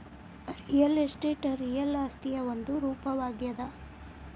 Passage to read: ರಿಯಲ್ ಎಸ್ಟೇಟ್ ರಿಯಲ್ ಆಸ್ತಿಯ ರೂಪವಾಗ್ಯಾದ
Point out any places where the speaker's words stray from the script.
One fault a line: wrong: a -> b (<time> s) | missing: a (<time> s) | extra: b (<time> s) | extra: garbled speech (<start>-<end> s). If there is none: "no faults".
extra: ಒಂದು (2.5 s)